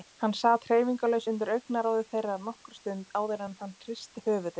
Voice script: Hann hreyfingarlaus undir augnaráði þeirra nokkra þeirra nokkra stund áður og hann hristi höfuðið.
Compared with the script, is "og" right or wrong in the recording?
wrong